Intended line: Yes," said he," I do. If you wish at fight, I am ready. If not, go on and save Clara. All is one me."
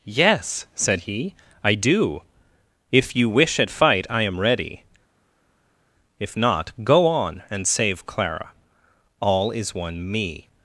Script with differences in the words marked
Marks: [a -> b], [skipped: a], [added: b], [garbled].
Yes," said he," I do. If you wish at fight, I am ready. If not, go on and save Clara. All is one me."